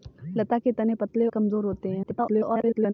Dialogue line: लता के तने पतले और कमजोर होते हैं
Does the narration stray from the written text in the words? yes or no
yes